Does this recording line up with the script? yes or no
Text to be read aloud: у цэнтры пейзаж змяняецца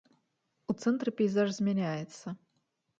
yes